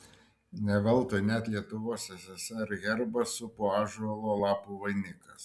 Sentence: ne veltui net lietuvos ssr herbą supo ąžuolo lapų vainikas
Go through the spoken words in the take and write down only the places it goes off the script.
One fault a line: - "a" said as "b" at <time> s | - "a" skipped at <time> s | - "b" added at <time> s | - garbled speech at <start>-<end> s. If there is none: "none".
none